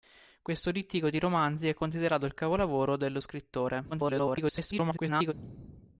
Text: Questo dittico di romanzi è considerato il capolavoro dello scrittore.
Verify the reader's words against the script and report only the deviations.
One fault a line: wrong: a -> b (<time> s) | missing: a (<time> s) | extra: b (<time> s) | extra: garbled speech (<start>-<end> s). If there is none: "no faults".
extra: garbled speech (3.9-5.3 s)